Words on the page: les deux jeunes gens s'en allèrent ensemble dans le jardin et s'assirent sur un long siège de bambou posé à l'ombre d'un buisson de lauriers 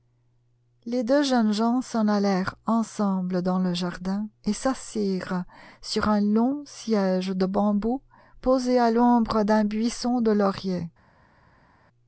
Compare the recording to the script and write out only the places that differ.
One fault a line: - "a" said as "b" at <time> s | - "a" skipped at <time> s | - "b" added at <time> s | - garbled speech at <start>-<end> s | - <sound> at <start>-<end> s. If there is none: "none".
none